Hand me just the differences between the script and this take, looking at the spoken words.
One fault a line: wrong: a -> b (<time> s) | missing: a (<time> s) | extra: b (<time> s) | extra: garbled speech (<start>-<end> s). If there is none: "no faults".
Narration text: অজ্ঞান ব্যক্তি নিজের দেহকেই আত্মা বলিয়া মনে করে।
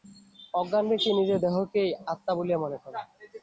no faults